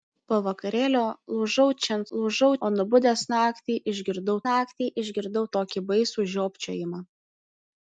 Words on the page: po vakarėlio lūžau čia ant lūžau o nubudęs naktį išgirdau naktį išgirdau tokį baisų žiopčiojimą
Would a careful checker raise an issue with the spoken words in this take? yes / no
no